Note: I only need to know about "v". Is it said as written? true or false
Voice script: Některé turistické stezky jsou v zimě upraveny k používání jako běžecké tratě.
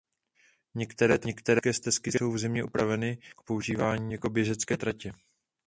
true